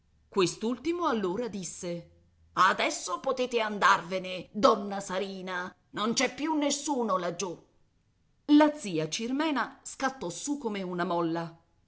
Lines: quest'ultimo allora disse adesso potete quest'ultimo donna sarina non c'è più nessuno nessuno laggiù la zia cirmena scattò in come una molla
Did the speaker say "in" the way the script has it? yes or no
no